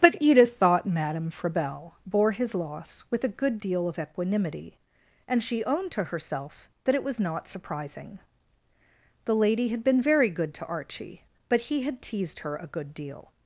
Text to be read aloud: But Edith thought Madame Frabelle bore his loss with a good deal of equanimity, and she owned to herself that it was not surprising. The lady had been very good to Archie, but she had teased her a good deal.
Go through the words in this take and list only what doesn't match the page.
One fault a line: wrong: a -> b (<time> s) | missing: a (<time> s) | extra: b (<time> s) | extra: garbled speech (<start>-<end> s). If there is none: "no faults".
wrong: she -> he (11.6 s)